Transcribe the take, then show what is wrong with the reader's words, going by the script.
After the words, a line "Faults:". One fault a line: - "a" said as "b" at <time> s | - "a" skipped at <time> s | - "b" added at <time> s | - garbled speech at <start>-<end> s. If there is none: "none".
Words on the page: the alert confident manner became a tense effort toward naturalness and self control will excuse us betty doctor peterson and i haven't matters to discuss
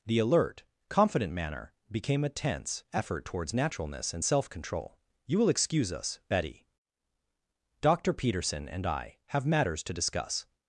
the alert confident manner became a tense effort towards naturalness and self control you will excuse us betty doctor peterson and i have matters to discuss
Faults:
- "toward" said as "towards" at 3.2 s
- "you" added at 5.3 s
- "haven't" said as "have" at 9.3 s